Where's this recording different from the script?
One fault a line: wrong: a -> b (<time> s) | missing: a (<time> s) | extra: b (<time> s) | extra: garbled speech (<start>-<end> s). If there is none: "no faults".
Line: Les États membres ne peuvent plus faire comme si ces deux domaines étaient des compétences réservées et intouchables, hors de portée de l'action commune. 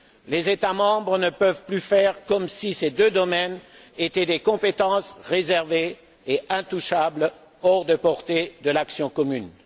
no faults